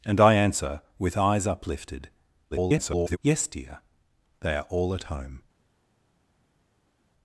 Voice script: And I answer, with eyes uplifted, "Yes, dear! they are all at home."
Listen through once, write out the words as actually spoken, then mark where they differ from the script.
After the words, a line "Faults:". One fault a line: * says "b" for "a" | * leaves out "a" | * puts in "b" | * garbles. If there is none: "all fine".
And I answer, with eyes uplifted, [garbled] "Yes, dear! they are all at home."
Faults:
* garbles